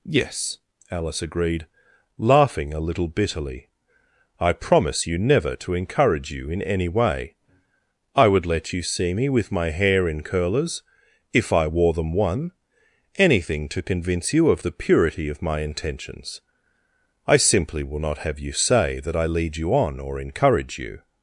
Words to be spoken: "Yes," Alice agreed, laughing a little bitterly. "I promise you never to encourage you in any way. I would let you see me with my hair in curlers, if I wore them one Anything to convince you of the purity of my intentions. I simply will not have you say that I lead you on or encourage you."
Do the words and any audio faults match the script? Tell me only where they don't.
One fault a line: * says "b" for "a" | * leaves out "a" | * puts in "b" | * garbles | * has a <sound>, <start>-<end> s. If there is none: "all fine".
all fine